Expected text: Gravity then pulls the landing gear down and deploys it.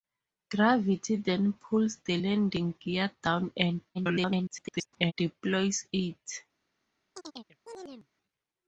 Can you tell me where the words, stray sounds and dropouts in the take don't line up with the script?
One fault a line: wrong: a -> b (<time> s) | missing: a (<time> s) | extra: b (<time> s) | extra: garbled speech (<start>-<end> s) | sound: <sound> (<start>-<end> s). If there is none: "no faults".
extra: garbled speech (3.9-5.1 s)
sound: chirp (7.1-8.1 s)